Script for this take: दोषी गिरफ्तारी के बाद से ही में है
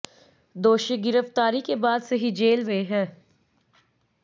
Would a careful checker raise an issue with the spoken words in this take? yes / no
yes